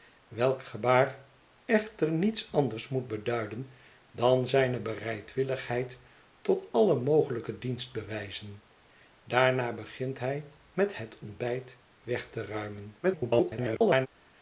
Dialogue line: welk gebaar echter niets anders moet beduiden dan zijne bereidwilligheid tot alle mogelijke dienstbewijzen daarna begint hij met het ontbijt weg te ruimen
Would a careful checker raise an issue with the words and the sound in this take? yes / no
yes